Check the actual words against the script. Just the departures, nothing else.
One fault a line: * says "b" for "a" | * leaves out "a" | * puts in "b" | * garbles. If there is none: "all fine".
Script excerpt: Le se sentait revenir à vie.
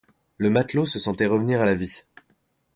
* puts in "matelot"
* puts in "la"